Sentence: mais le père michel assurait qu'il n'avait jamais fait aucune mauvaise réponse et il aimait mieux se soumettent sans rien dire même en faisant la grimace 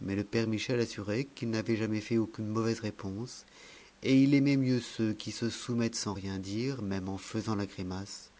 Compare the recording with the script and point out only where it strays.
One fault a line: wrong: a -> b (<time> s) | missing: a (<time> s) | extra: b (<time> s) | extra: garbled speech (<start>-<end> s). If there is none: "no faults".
extra: ceux qui (4.8 s)